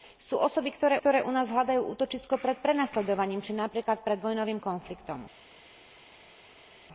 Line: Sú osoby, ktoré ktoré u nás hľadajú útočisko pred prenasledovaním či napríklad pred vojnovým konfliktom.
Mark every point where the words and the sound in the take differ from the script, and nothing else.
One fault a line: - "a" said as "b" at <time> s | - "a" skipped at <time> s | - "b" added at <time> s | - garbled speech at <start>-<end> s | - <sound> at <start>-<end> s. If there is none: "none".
none